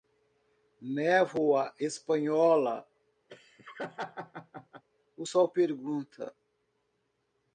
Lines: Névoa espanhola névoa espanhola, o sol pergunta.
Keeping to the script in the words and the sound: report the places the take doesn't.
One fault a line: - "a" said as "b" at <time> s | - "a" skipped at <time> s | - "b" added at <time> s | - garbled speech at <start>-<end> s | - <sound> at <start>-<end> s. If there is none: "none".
- "névoa espanhola" skipped at 2.9 s
- laugh at 3.3-4.8 s